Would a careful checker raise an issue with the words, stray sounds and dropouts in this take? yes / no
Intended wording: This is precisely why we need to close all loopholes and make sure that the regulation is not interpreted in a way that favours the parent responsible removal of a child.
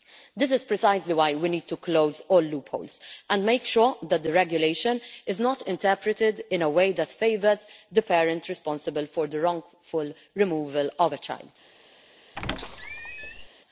yes